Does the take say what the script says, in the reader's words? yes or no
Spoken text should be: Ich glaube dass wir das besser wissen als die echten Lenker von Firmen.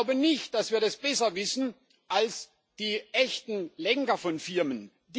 no